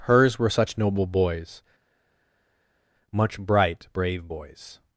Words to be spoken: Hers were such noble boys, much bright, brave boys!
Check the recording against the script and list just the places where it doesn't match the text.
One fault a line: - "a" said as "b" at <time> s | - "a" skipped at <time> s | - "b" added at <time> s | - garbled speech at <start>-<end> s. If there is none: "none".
none